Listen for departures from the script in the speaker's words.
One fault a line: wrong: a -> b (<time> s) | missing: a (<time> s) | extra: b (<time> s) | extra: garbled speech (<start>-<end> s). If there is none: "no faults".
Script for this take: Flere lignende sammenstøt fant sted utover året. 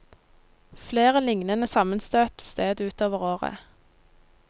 missing: fant (2.4 s)